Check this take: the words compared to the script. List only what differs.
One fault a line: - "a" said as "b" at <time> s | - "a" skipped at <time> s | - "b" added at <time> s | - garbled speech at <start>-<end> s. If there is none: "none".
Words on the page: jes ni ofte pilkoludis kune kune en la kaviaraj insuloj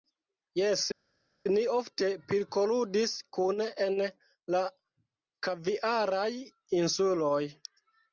- "kune" skipped at 3.7 s